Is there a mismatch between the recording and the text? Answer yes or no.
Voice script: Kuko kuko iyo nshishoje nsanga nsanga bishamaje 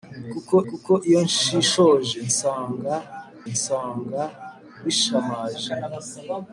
no